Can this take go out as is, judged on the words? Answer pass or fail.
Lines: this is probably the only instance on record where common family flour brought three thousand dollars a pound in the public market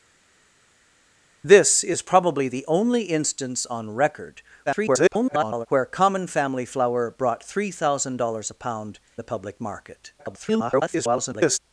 fail